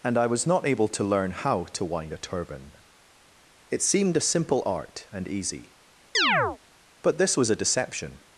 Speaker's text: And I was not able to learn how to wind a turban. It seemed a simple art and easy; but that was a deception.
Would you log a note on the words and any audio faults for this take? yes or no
yes